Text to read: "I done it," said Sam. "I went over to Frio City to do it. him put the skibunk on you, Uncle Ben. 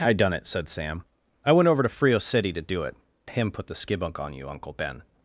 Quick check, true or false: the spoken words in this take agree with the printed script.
true